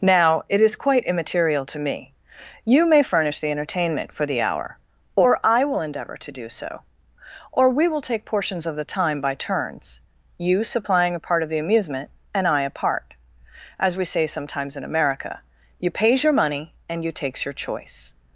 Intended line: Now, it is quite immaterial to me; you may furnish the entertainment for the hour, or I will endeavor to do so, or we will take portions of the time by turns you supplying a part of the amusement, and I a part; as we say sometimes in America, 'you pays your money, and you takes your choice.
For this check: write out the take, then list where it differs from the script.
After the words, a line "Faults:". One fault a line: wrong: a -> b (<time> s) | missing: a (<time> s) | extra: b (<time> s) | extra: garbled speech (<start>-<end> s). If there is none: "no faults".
Now, it is quite immaterial to me; you may furnish the entertainment for the hour, or I will endeavor to do so, or we will take portions of the time by turns you supplying a part of the amusement, and I a part; as we say sometimes in America, 'you pays your money, and you takes your choice.
Faults:
no faults